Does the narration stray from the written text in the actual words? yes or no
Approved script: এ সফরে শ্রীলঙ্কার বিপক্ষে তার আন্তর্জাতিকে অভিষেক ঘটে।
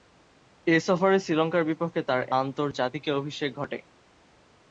no